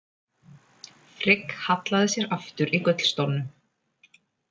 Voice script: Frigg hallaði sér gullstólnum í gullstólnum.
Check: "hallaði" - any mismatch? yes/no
no